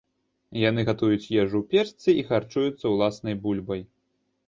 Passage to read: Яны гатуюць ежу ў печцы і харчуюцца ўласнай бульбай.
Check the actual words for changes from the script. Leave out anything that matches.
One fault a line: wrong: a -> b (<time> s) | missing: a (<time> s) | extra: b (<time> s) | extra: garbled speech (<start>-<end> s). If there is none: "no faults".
no faults